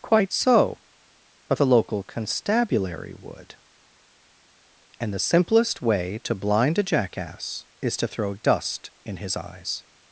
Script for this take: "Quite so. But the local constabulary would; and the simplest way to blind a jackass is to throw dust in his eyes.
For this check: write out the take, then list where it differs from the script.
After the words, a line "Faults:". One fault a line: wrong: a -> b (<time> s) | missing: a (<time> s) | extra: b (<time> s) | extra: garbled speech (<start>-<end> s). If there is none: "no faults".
"Quite so. But the local constabulary would; and the simplest way to blind a jackass is to throw dust in his eyes.
Faults:
no faults